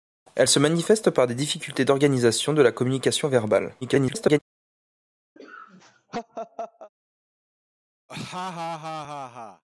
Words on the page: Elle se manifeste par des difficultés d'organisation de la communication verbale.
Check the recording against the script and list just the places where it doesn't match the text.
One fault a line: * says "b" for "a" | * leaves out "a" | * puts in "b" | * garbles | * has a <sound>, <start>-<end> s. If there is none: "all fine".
* garbles
* has a laugh, 5.4-6.9 s
* has a laugh, 8.1-9.6 s